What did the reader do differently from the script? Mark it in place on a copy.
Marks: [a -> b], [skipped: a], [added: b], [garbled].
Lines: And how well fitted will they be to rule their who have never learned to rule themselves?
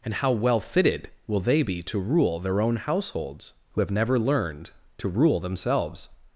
And how well fitted will they be to rule their [added: own households] who have never learned to rule themselves?